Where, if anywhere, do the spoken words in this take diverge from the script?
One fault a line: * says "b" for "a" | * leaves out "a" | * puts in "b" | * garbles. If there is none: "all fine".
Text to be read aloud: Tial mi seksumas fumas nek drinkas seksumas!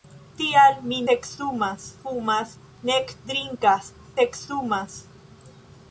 all fine